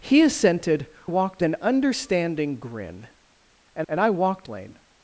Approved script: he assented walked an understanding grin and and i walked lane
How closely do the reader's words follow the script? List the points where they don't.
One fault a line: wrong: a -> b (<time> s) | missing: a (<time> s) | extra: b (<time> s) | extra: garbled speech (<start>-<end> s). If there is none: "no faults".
no faults